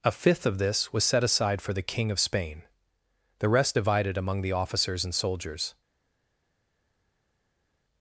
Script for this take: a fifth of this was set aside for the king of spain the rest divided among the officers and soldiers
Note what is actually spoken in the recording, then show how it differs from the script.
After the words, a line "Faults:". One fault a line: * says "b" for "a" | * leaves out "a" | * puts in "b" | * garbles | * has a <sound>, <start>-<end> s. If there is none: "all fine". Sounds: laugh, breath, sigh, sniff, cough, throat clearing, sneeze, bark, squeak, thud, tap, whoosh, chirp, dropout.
a fifth of this was set aside for the king of spain the rest divided among the officers and soldiers
Faults:
all fine